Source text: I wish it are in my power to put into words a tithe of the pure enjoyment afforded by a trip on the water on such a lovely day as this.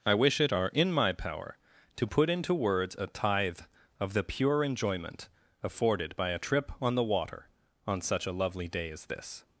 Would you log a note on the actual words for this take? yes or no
no